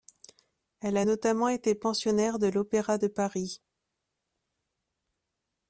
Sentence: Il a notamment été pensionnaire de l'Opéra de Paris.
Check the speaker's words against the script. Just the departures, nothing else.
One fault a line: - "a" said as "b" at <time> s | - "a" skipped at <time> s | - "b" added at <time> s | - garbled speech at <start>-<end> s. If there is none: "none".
- "Il" said as "Elle" at 0.8 s